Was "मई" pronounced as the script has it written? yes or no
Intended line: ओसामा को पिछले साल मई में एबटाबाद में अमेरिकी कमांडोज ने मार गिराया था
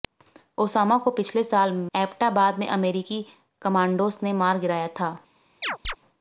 no